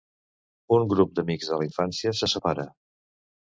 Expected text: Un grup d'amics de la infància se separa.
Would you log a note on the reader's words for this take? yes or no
no